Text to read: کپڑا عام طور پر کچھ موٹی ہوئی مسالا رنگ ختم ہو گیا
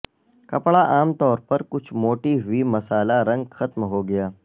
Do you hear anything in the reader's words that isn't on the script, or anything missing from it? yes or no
no